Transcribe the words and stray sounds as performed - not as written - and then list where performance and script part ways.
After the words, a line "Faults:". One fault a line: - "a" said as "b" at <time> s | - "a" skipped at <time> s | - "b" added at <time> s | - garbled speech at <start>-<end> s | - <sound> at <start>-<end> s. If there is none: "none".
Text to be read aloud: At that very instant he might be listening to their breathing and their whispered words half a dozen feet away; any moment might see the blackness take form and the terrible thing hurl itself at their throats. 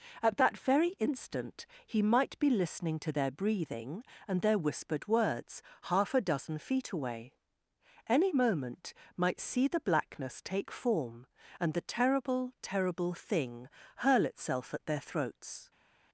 At that very instant he might be listening to their breathing and their whispered words half a dozen feet away; any moment might see the blackness take form and the terrible terrible thing hurl itself at their throats.
Faults:
- "terrible" added at 12.6 s